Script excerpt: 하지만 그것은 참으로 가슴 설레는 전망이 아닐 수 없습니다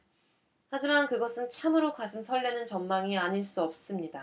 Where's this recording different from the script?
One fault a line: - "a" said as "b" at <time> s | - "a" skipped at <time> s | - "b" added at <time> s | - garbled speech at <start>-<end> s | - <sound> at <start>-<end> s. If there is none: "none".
none